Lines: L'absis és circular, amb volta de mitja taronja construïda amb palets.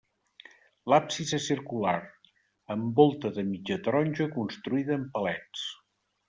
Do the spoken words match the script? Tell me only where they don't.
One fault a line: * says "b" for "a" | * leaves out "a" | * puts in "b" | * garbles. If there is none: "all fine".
all fine